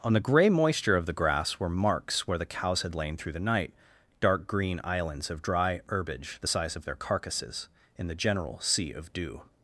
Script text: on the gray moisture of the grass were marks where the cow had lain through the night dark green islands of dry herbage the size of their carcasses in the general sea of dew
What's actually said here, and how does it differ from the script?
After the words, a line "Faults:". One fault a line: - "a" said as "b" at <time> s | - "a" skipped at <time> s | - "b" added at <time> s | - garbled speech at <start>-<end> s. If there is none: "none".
on the gray moisture of the grass were marks where the cows had lain through the night dark green islands of dry herbage the size of their carcasses in the general sea of dew
Faults:
- "cow" said as "cows" at 2.5 s